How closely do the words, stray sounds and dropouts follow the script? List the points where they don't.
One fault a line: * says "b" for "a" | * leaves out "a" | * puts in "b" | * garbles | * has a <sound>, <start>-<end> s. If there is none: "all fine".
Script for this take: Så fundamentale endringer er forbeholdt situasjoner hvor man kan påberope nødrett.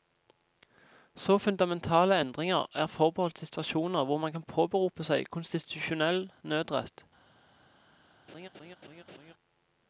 * puts in "seg konstitusjonell"
* has a laugh, 8.3-9.3 s